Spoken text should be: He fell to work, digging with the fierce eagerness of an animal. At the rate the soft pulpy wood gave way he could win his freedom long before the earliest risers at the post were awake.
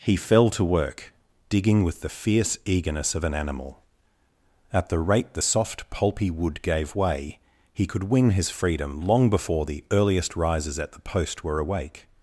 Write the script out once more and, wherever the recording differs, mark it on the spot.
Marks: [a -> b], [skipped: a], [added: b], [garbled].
He fell to work, digging with the fierce eagerness of an animal. At the rate the soft pulpy wood gave way he could win his freedom long before the earliest risers at the post were awake.